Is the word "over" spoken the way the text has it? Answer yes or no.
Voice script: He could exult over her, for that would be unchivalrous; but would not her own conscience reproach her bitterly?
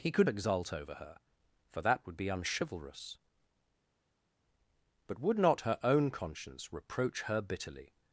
yes